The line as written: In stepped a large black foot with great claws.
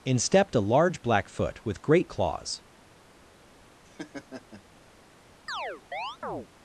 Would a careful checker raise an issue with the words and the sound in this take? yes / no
yes